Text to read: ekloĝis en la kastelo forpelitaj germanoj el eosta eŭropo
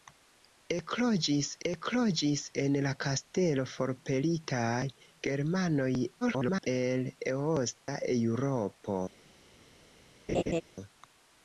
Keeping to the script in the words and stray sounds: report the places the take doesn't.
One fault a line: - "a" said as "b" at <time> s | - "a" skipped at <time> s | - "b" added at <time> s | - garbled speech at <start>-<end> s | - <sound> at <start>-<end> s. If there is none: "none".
- "ekloĝis" added at 1.7 s
- garbled speech at 6.2-6.7 s
- dropout at 7.8-7.9 s
- laugh at 10.3-10.6 s